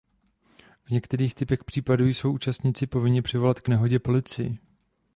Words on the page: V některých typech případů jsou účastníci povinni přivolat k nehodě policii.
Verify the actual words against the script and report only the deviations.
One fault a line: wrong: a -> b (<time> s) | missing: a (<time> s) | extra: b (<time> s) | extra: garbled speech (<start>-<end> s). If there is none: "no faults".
no faults